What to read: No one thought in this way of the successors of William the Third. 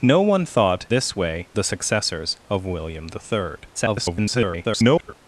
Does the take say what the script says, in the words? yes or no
no